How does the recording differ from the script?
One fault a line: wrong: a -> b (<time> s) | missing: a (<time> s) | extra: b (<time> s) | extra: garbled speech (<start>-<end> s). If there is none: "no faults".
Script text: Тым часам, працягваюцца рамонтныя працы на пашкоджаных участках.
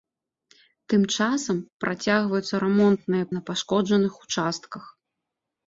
missing: працы (3.2 s)